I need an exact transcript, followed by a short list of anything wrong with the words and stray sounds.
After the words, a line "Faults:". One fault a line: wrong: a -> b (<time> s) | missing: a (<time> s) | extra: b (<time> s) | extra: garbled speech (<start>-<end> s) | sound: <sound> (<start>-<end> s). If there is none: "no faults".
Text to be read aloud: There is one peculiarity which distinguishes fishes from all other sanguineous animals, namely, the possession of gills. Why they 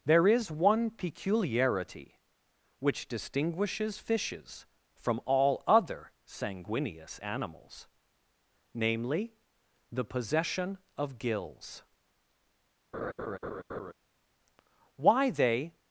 There is one peculiarity which distinguishes fishes from all other sanguineous animals, namely, the possession of gills. Why they
Faults:
sound: laugh (12.9-13.9 s)